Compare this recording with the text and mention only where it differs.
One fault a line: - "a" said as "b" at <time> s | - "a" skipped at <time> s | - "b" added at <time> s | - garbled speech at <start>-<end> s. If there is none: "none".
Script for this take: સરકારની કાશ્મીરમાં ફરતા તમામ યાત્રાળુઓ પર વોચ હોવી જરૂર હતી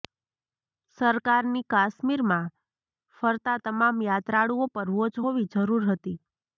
none